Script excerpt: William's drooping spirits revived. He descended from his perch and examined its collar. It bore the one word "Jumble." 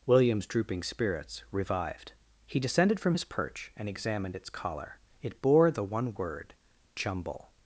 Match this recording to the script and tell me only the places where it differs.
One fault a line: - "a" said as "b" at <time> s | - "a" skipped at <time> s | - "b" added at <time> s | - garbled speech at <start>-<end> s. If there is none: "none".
none